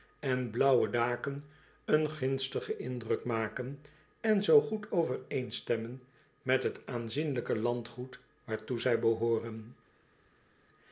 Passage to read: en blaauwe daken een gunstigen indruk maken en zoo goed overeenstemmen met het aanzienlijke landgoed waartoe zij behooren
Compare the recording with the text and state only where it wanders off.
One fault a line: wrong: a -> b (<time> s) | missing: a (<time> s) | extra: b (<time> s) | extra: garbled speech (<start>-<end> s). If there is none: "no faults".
no faults